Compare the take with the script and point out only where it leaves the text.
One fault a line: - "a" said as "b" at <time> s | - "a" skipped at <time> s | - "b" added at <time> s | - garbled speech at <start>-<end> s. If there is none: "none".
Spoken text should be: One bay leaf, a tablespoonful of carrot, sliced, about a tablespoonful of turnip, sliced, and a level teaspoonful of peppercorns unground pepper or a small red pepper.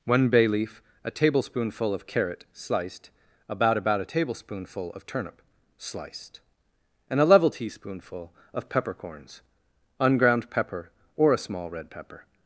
- "about" added at 3.8 s